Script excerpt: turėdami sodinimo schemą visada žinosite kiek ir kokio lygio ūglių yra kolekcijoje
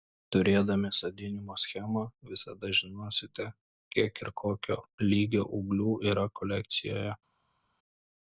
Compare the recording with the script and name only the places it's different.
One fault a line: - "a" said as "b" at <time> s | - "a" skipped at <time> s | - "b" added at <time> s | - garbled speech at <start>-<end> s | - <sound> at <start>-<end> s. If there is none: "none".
none